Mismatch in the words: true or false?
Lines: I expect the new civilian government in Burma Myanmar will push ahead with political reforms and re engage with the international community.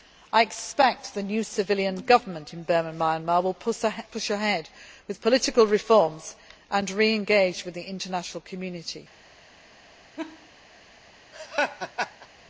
false